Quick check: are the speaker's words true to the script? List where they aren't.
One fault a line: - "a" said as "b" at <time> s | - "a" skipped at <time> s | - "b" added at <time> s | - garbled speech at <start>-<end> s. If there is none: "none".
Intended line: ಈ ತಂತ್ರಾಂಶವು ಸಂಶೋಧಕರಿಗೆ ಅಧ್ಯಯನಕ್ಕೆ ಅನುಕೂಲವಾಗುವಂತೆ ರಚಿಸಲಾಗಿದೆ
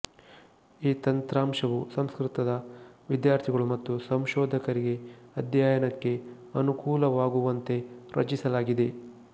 - "ಸಂಸ್ಕೃತದ ವಿದ್ಯಾರ್ಥಿಗಳು ಮತ್ತು" added at 1.9 s